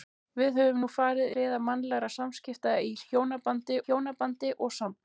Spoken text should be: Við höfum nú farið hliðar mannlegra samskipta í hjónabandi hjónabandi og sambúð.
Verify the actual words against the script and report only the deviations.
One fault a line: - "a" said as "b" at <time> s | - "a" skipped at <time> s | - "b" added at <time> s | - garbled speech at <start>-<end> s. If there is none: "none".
none